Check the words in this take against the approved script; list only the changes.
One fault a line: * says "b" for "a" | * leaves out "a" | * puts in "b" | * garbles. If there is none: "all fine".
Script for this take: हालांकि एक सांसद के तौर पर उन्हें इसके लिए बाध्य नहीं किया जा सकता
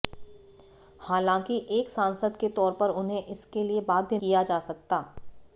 * leaves out "नहीं"